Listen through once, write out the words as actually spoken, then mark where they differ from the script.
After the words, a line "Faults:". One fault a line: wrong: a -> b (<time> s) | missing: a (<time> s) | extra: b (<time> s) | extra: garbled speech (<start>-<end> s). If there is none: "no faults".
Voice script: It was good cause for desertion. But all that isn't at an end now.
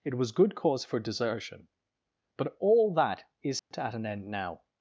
It was good cause for desertion. But all that isn't at an end now.
Faults:
no faults